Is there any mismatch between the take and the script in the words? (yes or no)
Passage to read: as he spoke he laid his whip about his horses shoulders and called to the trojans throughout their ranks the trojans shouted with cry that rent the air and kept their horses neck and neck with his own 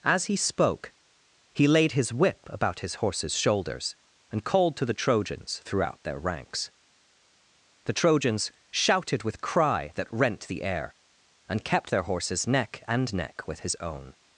no